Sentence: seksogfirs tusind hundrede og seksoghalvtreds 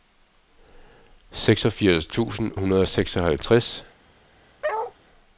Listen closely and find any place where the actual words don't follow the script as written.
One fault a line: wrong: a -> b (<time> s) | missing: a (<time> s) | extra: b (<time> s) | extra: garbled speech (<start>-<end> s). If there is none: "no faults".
no faults